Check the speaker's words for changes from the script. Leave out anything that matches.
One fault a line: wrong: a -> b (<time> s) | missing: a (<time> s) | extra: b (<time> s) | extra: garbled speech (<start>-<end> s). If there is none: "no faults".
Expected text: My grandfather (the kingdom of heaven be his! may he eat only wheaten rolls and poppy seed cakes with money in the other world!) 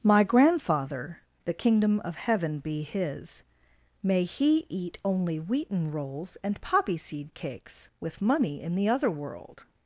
no faults